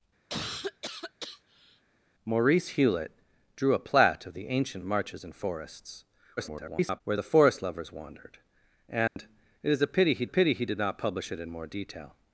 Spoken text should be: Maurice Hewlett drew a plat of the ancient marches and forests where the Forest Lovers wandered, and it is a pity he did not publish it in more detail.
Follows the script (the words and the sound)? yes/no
no